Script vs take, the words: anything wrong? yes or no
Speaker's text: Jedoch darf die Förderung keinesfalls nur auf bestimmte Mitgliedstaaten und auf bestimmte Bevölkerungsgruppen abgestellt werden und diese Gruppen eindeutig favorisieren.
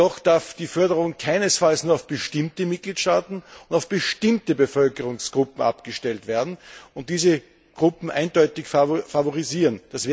no